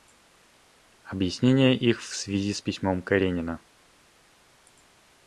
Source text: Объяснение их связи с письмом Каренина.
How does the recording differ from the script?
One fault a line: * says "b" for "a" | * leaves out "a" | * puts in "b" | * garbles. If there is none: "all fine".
* puts in "в"